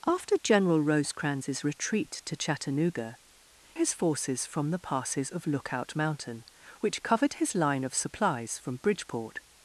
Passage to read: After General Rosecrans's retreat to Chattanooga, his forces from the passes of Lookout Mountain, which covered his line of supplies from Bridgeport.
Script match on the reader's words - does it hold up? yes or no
yes